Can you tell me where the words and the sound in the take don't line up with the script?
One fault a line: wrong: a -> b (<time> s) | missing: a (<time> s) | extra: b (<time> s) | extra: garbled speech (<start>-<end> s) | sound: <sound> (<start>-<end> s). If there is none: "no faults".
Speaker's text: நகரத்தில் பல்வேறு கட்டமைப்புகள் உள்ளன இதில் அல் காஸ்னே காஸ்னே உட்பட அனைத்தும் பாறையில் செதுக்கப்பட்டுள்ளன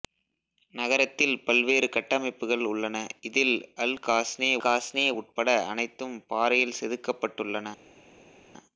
no faults